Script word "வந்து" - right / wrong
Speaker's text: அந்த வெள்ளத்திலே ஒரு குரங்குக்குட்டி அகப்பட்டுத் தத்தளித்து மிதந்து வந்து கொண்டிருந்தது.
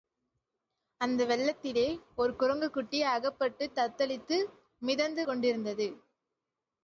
wrong